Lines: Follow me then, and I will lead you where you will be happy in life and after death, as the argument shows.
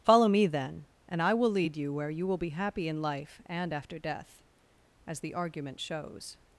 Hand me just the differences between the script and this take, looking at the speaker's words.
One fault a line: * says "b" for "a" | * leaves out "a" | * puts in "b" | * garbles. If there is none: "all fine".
all fine